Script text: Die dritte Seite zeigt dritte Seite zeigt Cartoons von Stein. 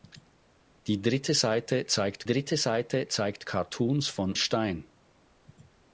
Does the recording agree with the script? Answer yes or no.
yes